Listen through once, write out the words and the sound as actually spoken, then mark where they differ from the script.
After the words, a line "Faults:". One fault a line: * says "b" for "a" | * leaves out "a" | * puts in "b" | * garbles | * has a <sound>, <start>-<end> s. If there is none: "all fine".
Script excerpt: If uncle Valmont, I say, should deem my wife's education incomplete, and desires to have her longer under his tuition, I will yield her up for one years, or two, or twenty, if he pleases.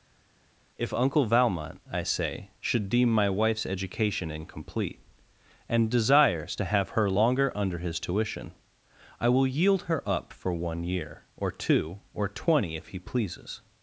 If uncle Valmont, I say, should deem my wife's education incomplete, and desires to have her longer under his tuition, I will yield her up for one year, or two, or twenty, if he pleases.
Faults:
* says "year" for "years"